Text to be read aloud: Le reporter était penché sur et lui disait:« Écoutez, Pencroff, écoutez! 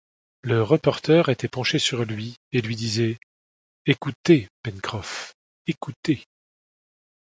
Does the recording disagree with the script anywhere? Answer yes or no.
yes